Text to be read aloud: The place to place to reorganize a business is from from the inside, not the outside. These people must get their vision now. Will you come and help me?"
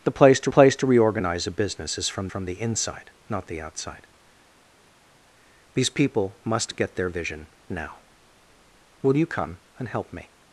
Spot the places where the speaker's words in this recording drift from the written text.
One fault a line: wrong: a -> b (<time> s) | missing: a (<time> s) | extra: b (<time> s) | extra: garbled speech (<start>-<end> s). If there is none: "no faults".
no faults